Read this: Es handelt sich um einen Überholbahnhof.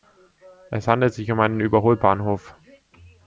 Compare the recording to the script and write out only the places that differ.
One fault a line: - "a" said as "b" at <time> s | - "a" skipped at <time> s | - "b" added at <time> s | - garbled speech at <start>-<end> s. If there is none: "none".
none